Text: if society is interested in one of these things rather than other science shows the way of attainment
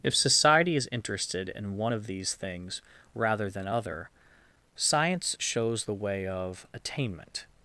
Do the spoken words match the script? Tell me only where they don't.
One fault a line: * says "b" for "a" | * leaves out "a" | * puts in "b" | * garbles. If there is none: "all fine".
all fine